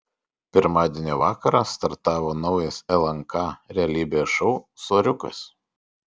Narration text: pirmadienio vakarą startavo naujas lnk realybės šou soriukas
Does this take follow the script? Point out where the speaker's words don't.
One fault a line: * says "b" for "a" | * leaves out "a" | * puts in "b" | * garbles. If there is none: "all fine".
all fine